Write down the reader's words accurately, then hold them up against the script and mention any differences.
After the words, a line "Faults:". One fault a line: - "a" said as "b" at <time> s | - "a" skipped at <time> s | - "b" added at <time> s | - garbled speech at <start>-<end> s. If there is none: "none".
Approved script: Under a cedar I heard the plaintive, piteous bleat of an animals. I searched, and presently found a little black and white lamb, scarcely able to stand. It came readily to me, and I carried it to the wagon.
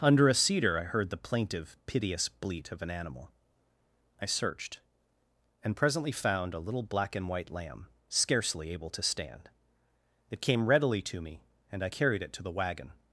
Under a cedar I heard the plaintive, piteous bleat of an animal. I searched, and presently found a little black and white lamb, scarcely able to stand. It came readily to me, and I carried it to the wagon.
Faults:
- "animals" said as "animal" at 2.9 s